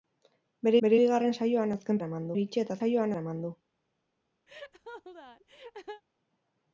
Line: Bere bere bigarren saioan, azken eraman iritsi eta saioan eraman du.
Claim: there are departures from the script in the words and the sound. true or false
true